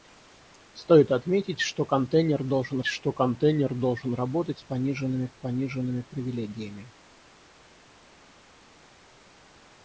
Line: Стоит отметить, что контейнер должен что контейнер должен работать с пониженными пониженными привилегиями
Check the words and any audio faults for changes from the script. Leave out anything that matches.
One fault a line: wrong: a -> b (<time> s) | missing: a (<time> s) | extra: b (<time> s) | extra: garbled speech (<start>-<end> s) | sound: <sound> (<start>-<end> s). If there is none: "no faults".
no faults